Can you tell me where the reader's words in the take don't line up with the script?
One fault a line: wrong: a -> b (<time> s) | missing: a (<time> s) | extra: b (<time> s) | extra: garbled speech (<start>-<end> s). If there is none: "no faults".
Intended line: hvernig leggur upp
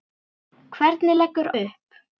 no faults